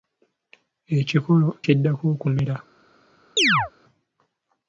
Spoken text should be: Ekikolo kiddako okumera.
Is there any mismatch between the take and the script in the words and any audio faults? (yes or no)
yes